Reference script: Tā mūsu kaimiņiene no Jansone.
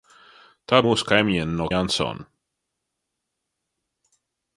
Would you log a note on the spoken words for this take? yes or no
no